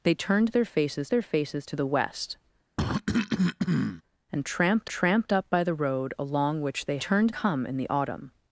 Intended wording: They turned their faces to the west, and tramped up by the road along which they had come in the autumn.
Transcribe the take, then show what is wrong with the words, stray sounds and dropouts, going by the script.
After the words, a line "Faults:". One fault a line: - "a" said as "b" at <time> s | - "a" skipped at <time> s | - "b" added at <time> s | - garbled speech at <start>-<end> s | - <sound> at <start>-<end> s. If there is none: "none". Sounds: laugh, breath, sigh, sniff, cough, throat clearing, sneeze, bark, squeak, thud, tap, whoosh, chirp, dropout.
They turned their faces their faces to the west, and tramped tramped up by the road along which they turned come in the autumn.
Faults:
- "their faces" added at 1.1 s
- cough at 2.8-4.0 s
- "tramped" added at 4.9 s
- "had" said as "turned" at 7.0 s